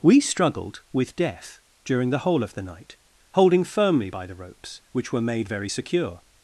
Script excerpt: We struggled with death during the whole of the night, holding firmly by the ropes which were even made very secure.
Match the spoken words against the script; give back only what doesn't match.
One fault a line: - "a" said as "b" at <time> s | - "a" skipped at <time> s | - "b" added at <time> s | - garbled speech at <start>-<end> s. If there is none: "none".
- "even" skipped at 5.2 s